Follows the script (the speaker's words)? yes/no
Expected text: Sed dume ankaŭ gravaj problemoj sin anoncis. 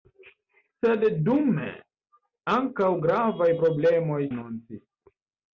no